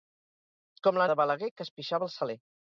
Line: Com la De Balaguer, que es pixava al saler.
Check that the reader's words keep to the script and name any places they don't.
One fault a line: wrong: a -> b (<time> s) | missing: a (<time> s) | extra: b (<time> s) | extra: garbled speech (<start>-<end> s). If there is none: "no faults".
no faults